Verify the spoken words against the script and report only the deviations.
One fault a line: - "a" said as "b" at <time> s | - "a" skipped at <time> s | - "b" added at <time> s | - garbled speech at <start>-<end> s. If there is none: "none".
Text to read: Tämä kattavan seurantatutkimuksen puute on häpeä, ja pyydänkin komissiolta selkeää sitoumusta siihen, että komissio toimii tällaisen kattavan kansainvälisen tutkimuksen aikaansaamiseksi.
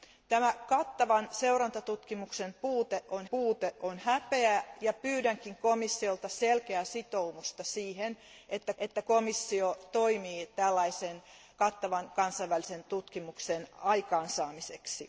- "puute on" added at 3.3 s
- "että" added at 8.8 s